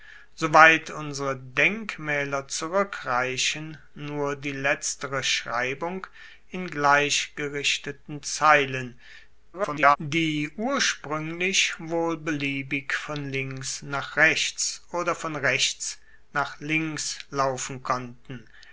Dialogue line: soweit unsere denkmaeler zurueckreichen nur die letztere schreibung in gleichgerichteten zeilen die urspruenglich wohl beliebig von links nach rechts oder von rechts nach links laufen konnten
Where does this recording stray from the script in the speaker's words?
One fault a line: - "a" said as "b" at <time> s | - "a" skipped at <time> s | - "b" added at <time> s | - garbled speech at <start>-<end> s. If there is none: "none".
- garbled speech at 9.5-10.0 s